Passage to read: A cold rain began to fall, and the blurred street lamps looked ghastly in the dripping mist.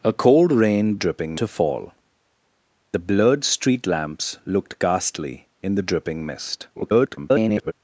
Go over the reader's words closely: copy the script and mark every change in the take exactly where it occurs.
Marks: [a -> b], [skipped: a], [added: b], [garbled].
A cold rain [began -> dripping] to fall, [skipped: and] the blurred street lamps looked ghastly in the dripping mist. [garbled]